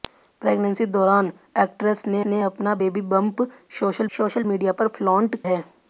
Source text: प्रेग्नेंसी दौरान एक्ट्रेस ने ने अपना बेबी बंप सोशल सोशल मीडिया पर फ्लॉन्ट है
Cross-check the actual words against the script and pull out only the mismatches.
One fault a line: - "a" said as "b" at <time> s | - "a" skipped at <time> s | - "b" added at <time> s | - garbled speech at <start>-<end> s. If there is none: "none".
none